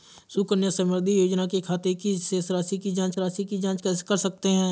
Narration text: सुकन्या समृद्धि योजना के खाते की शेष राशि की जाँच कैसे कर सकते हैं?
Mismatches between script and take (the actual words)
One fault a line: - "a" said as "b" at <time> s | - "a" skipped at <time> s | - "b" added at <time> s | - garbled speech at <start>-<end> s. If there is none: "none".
- "राशि की जाँच" added at 3.2 s